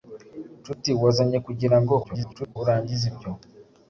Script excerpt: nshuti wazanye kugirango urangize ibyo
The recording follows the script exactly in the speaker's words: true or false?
false